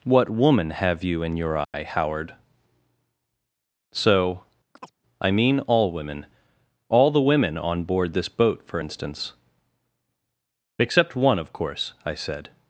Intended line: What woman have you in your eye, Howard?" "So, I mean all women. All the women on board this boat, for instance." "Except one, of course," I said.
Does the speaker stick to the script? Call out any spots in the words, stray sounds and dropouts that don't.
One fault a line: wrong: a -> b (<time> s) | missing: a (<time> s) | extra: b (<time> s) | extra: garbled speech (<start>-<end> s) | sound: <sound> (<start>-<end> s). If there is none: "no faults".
sound: dropout (1.6-1.7 s)
sound: chirp (4.8-4.9 s)